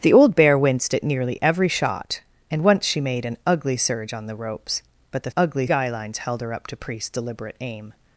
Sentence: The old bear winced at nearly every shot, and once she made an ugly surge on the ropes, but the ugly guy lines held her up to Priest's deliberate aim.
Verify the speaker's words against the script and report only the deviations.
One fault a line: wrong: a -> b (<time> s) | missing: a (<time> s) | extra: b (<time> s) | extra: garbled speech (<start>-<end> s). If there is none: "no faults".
no faults